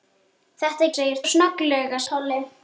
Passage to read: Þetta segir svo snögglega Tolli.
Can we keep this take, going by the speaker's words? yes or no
yes